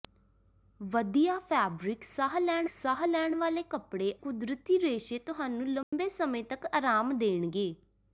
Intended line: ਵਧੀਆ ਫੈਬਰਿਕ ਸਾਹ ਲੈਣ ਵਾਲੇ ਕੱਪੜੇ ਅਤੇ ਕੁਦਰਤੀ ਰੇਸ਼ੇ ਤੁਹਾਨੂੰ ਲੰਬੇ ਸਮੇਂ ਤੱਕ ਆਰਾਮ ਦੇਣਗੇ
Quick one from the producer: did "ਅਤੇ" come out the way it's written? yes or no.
no